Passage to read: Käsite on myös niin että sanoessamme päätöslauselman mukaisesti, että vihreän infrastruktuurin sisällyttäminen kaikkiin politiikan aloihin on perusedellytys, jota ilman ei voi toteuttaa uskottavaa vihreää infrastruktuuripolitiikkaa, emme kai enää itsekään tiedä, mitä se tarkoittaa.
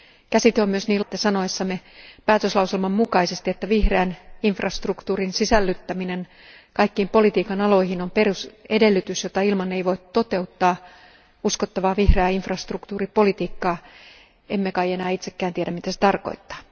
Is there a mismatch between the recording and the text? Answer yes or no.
no